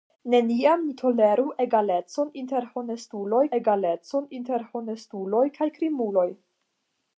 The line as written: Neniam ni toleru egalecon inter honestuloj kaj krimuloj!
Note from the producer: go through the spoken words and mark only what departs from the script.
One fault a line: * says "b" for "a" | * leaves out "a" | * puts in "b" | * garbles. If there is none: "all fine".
* puts in "egalecon inter honestuloj"